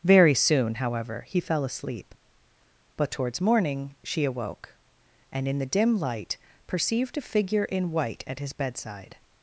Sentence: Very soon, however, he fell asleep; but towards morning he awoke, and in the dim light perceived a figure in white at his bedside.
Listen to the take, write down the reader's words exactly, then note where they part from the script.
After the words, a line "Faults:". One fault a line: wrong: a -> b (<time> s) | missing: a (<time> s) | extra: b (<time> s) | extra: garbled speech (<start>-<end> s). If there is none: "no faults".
Very soon, however, he fell asleep; but towards morning she awoke, and in the dim light perceived a figure in white at his bedside.
Faults:
wrong: he -> she (4.0 s)